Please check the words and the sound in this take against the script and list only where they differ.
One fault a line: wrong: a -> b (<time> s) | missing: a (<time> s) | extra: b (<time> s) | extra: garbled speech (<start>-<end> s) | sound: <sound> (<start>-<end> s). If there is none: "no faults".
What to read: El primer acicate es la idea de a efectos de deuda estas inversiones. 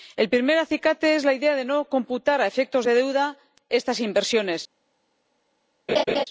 extra: no computar (1.6 s)
sound: laugh (5.9-6.2 s)